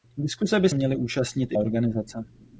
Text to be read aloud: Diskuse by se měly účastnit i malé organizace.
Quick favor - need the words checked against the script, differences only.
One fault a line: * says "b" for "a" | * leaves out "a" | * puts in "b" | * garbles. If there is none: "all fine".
* leaves out "se"
* leaves out "malé"